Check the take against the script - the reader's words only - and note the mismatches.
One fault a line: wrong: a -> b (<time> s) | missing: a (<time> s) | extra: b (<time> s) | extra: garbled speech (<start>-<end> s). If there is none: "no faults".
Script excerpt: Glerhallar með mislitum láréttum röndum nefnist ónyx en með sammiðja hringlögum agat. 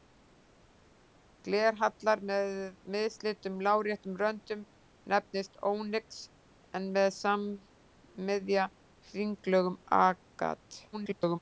extra: garbled speech (10.9-11.4 s)